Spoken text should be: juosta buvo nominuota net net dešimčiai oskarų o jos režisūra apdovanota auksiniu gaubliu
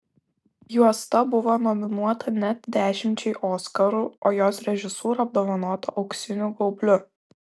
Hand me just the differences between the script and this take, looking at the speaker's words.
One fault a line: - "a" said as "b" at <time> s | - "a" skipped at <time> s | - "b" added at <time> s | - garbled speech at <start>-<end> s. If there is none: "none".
- "net" skipped at 2.7 s